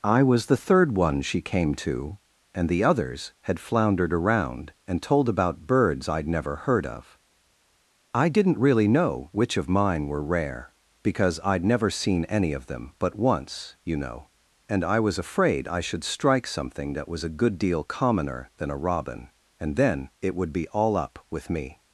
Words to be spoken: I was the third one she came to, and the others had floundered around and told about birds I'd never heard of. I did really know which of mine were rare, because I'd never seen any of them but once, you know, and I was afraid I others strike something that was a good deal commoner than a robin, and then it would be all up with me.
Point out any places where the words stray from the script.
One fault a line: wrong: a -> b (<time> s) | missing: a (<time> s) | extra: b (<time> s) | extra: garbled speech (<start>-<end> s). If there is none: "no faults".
wrong: did -> didn't (8.3 s)
wrong: others -> should (15.8 s)